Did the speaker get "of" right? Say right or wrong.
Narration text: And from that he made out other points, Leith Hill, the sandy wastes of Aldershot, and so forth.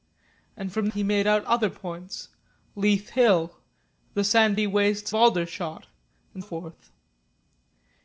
wrong